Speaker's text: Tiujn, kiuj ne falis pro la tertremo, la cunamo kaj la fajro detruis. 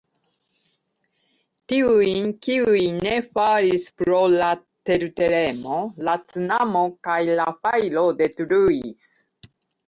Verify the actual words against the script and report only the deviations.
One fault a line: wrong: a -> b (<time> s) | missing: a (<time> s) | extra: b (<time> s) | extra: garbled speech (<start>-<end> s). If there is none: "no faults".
no faults